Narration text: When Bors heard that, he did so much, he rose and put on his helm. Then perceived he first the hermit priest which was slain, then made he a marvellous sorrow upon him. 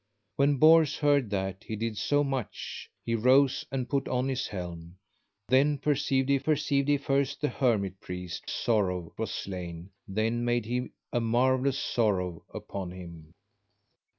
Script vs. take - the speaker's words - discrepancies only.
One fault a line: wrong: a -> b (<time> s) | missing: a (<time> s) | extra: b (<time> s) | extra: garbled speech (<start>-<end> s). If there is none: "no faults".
extra: perceived he (6.4 s)
wrong: which -> sorrow (8.5 s)